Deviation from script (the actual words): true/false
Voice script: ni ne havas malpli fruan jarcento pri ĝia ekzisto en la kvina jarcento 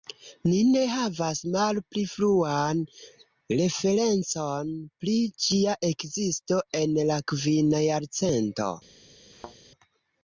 true